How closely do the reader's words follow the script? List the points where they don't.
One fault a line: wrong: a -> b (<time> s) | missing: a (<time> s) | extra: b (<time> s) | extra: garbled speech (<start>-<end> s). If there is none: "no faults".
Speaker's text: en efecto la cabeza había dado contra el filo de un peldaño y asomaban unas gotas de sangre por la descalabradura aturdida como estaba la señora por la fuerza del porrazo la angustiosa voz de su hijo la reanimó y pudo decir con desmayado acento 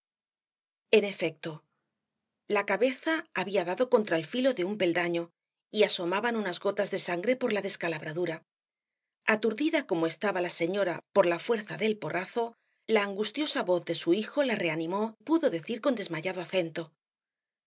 missing: y (15.2 s)